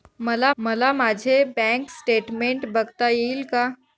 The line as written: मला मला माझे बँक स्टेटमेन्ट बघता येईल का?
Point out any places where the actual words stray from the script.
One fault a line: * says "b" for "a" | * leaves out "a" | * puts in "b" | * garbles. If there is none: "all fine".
all fine